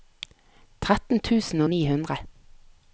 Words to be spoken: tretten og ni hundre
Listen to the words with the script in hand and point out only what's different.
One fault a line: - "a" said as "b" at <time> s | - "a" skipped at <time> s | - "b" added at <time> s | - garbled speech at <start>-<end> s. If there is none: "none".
- "tusen" added at 1.3 s